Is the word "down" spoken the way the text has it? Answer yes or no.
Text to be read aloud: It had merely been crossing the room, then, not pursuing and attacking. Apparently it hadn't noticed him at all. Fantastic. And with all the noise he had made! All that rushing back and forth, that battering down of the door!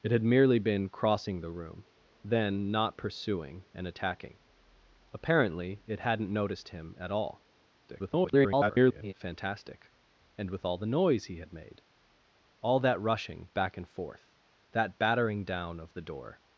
yes